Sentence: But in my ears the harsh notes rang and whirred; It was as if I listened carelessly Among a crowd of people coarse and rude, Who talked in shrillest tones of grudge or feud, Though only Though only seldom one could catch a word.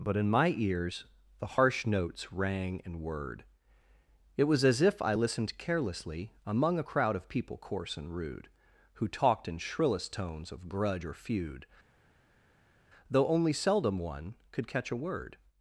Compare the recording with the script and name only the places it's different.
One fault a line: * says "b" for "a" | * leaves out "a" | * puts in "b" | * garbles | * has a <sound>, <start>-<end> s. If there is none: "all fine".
* leaves out "Though only"